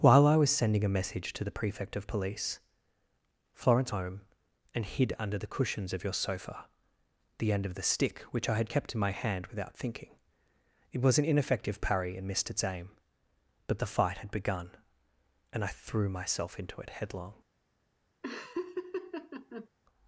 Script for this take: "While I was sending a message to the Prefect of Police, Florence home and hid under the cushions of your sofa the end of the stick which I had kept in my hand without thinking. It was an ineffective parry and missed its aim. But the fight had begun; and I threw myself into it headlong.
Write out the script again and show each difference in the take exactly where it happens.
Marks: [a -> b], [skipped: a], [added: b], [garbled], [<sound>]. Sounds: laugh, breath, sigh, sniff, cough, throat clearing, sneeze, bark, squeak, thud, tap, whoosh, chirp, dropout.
"While I was sending a message to the Prefect of Police, Florence home and hid under the cushions of your sofa the end of the stick which I had kept in my hand without thinking. It was an ineffective parry and missed its aim. But the fight had begun; and I threw myself into it headlong. [laugh]